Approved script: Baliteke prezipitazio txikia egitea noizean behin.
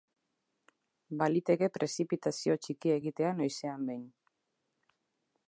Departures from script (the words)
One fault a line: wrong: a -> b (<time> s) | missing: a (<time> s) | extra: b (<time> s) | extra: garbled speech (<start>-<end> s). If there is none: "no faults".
no faults